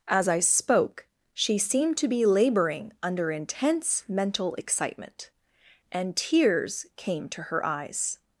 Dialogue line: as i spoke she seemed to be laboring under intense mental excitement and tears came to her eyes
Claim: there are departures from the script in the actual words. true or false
false